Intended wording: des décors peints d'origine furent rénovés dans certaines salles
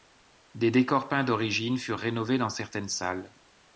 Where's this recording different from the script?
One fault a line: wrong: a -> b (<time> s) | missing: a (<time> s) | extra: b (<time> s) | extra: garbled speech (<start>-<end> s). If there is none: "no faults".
no faults